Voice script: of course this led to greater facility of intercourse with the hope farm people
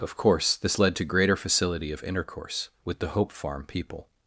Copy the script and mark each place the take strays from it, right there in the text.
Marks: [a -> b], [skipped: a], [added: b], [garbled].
of course this led to greater facility of intercourse with the hope farm people